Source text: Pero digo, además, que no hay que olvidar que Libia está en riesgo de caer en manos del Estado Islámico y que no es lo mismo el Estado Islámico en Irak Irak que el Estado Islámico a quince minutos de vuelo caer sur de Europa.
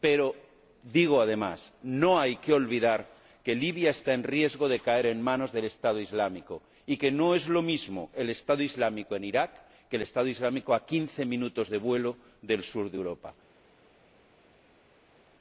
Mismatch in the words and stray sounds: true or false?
true